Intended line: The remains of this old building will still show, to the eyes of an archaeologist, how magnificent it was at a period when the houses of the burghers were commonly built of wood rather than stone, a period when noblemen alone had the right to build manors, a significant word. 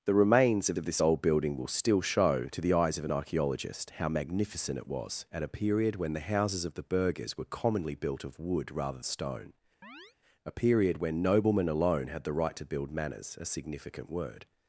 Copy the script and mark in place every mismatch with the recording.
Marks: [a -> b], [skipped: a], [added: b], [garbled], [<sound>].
The remains of [added: of] this old building will still show, to the eyes of an archaeologist, how magnificent it was at a period when the houses of the burghers were commonly built of wood rather [skipped: than] stone, [chirp] a period when noblemen alone had the right to build manors, a significant word.